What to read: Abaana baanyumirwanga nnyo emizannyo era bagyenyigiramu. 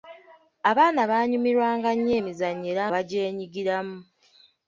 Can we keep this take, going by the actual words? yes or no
yes